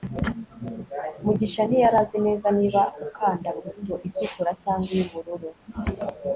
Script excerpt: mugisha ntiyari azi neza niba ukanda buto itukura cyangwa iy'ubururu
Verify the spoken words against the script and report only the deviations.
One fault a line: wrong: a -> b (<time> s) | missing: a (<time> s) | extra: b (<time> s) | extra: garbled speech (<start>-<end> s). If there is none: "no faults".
no faults